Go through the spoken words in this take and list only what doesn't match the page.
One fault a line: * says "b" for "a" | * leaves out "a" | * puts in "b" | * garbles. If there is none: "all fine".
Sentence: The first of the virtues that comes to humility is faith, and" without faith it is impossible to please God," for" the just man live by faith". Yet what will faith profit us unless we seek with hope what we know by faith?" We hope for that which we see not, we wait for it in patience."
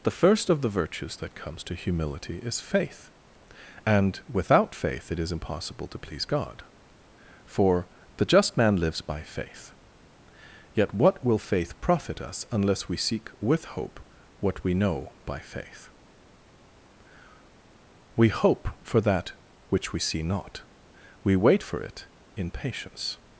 * says "lives" for "live"